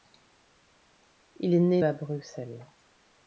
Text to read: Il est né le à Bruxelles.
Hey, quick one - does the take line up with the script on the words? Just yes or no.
no